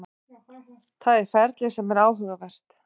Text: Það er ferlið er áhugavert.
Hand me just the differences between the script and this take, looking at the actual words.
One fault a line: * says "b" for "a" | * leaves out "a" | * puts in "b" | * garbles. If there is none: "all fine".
* puts in "sem"